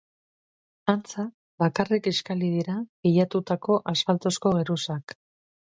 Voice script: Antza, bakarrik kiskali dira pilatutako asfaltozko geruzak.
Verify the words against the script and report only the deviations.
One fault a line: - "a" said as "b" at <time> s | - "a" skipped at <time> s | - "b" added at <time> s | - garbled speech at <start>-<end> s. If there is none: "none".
none